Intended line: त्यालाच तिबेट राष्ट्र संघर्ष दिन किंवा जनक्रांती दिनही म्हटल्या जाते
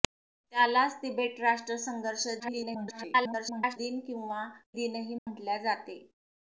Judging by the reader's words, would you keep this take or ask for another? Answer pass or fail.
fail